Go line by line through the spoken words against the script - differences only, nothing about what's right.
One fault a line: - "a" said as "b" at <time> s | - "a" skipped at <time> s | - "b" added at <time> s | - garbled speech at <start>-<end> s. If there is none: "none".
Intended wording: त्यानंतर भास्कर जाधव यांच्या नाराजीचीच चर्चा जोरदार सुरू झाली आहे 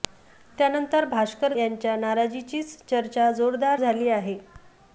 - "जाधव" skipped at 1.5 s
- "सुरू" skipped at 3.8 s